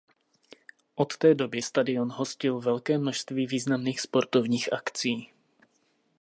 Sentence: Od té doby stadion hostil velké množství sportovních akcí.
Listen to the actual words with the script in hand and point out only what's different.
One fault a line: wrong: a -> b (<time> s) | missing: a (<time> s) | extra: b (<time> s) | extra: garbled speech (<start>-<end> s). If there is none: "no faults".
extra: významných (3.5 s)